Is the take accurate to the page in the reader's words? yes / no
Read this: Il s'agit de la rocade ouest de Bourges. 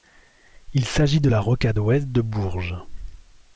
yes